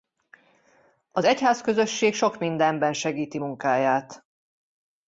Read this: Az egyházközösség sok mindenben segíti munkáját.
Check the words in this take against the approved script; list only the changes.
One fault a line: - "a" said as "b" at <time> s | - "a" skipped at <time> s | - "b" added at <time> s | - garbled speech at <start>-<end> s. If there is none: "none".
none